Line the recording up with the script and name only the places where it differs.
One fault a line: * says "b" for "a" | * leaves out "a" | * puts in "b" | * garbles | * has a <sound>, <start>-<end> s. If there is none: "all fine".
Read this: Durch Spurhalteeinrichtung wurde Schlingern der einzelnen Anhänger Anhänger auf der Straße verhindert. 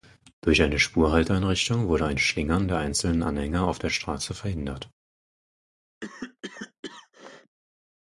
* puts in "eine"
* puts in "ein"
* leaves out "Anhänger"
* has a cough, 6.0-7.6 s